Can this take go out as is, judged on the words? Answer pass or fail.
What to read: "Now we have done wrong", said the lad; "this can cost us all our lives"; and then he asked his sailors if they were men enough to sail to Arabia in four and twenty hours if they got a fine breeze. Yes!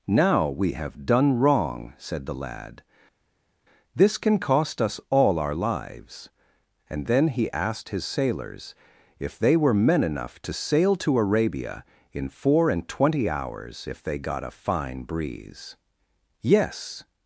pass